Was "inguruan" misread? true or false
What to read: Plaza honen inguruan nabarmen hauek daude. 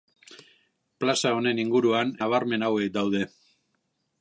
false